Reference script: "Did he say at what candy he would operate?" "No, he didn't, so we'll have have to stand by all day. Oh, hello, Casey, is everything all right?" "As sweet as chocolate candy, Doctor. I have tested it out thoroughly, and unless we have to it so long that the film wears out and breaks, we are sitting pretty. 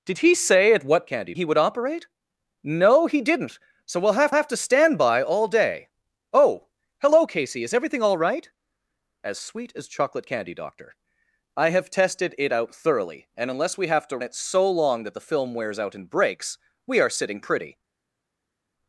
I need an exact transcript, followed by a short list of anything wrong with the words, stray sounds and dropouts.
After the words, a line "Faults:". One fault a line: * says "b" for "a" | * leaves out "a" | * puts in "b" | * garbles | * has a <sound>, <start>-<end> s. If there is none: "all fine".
"Did he say at what candy he would operate?" "No, he didn't, so we'll have have to stand by all day. Oh, hello, Casey, is everything all right?" "As sweet as chocolate candy, Doctor. I have tested it out thoroughly, and unless we have to it so long that the film wears out and breaks, we are sitting pretty.
Faults:
all fine